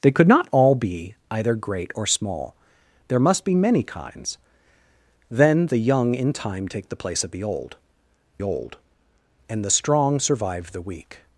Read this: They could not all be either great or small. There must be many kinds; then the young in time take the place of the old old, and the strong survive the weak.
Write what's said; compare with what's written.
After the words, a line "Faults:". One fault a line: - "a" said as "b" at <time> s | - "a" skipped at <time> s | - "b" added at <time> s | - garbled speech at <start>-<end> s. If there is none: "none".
They could not all be either great or small. There must be many kinds; then the young in time take the place of the old old, and the strong survive the weak.
Faults:
none